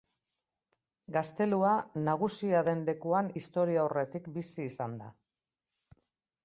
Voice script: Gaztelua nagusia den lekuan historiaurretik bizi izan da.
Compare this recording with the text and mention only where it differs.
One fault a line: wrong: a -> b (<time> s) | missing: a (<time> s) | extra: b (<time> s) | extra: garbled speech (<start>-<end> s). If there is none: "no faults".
no faults